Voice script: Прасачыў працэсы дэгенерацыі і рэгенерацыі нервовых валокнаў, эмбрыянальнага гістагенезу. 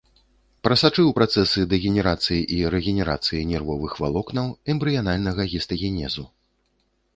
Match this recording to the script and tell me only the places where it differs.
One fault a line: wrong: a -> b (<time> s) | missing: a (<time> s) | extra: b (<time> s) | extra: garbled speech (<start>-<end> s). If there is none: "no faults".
no faults